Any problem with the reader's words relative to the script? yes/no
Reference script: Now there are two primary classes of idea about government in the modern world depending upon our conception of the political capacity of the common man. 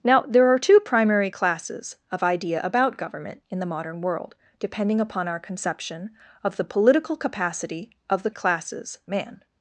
yes